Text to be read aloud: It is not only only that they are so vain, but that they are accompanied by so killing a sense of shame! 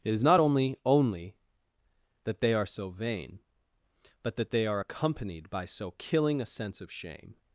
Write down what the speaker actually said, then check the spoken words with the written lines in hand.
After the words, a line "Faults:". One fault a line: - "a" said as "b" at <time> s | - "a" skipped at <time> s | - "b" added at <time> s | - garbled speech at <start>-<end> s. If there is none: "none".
It is not only only that they are so vain, but that they are accompanied by so killing a sense of shame!
Faults:
none